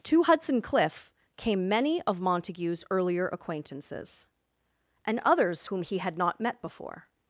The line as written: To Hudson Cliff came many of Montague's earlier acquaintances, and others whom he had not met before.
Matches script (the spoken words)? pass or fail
pass